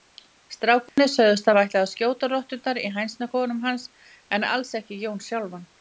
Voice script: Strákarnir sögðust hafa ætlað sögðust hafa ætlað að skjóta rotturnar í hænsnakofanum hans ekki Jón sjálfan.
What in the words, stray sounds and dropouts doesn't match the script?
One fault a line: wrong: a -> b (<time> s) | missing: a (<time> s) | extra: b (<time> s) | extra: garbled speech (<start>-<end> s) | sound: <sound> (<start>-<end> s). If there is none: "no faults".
sound: dropout (0.9-1.0 s)
missing: sögðust hafa ætlað (1.8 s)
extra: en alls (4.4 s)